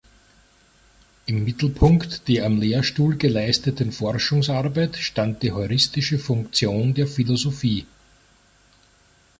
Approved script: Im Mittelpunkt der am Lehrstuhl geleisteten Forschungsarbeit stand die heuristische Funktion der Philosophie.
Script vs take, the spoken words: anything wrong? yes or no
no